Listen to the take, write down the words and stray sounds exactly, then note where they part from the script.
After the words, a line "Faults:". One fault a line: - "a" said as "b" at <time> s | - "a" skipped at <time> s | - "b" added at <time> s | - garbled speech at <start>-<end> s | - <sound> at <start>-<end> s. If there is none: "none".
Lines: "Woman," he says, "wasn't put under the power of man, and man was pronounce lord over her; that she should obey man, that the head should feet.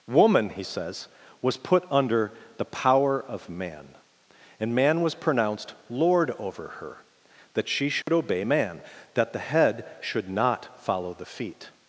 "Woman," he says, "was put under the power of man, and man was pronounced lord over her; that she should obey man, that the head should not follow the feet.
Faults:
- "wasn't" said as "was" at 1.4 s
- "pronounce" said as "pronounced" at 5.2 s
- dropout at 8.0-8.1 s
- "not follow the" added at 10.3 s